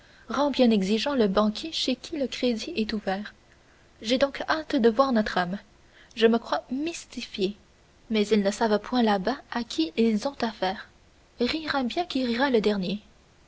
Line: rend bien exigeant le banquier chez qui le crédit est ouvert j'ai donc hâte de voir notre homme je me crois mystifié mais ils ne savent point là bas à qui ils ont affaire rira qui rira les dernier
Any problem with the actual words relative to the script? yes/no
yes